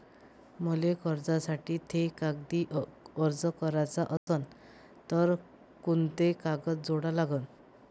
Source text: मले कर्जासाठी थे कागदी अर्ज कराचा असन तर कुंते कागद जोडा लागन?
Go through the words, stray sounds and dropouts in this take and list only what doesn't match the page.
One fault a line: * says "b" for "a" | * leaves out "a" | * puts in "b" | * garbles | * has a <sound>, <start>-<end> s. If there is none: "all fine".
* has a dropout, 4.2-4.3 s